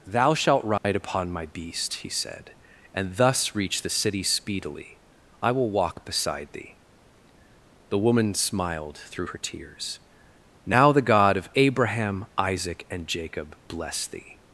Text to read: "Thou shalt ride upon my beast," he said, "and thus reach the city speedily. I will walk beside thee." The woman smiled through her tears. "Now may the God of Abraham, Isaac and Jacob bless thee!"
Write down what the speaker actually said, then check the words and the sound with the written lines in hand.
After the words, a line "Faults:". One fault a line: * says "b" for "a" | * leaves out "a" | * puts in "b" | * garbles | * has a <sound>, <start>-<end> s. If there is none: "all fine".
"Thou shalt ride upon my beast," he said, "and thus reach the city speedily. I will walk beside thee." The woman smiled through her tears. "Now the God of Abraham, Isaac and Jacob bless thee!"
Faults:
* has a dropout, 0.8-0.8 s
* has a dropout, 5.9-6.0 s
* leaves out "may"